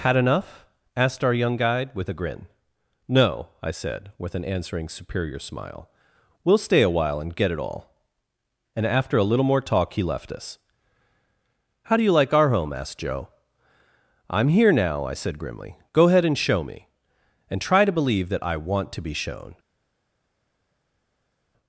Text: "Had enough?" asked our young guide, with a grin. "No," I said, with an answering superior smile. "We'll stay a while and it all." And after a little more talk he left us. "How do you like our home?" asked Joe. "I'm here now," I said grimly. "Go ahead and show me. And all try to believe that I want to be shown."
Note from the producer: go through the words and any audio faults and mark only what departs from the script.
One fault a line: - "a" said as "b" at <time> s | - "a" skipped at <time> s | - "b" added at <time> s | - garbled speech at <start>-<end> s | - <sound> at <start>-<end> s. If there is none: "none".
- "get" added at 7.3 s
- "all" skipped at 17.6 s